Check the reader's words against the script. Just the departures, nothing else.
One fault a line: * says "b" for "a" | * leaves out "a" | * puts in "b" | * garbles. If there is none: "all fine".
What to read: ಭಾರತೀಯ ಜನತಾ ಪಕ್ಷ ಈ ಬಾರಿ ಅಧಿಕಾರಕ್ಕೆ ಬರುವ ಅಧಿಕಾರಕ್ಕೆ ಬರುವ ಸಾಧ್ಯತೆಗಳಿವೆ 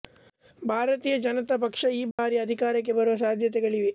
* leaves out "ಅಧಿಕಾರಕ್ಕೆ ಬರುವ"